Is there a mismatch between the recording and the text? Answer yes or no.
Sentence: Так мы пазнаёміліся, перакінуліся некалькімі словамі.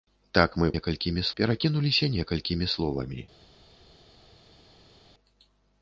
yes